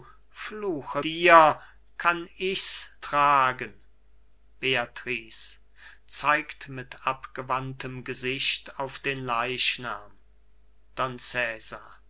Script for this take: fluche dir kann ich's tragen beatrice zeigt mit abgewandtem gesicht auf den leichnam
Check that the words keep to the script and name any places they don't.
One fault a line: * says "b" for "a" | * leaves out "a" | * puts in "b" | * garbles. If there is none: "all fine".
all fine